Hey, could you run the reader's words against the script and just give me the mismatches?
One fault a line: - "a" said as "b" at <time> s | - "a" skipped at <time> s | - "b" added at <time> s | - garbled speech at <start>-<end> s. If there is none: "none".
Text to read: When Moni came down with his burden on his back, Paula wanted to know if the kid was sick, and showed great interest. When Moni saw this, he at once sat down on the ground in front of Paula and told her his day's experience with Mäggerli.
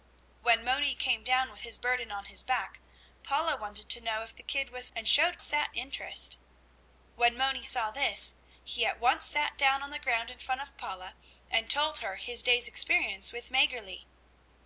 - "sick" skipped at 4.9 s
- "great" said as "sat" at 5.4 s